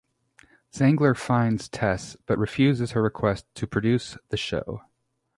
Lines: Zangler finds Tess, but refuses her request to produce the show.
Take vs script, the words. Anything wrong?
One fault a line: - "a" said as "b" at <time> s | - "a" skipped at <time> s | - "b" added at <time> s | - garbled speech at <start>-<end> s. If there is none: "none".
none